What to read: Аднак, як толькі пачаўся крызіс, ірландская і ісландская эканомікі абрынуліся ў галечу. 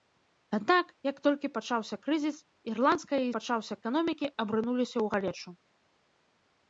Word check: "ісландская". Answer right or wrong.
wrong